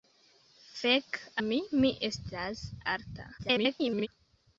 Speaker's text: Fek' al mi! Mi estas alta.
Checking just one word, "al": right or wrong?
wrong